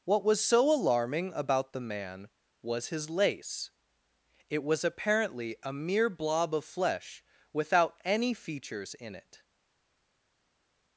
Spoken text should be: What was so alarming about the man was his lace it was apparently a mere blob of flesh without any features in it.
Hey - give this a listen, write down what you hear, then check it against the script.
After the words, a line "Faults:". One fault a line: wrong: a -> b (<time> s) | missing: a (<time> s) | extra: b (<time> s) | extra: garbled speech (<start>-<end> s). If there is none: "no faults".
What was so alarming about the man was his lace it was apparently a mere blob of flesh without any features in it.
Faults:
no faults